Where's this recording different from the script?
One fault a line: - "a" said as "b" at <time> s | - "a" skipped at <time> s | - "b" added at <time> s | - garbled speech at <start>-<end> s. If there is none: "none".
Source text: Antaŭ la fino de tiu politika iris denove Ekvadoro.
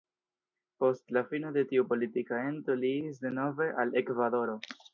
- "Antaŭ" said as "Post" at 0.8 s
- "ento li" added at 2.5 s
- "al" added at 3.8 s